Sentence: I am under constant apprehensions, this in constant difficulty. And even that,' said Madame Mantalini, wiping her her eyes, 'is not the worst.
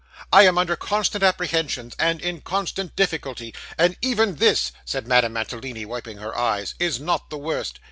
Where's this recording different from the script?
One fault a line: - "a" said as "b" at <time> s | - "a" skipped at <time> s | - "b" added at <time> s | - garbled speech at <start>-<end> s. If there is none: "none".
- "this" said as "and" at 2.0 s
- "that" said as "this" at 4.4 s
- "her" skipped at 6.3 s